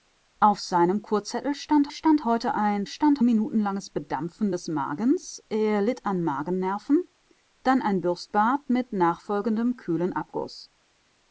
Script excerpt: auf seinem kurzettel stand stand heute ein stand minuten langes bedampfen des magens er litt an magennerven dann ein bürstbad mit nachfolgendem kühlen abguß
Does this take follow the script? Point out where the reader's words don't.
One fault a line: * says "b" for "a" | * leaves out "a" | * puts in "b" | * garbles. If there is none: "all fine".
all fine